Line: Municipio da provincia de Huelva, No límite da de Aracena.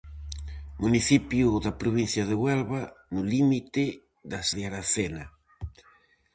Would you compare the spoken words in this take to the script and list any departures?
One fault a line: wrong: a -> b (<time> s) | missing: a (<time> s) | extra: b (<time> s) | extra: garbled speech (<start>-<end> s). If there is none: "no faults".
no faults